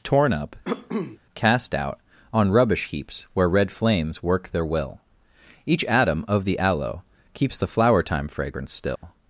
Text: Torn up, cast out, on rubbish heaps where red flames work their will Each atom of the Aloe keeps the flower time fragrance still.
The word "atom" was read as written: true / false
true